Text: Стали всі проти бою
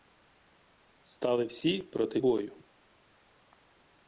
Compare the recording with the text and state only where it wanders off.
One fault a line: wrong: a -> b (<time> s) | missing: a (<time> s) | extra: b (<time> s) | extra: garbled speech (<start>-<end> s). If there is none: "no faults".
no faults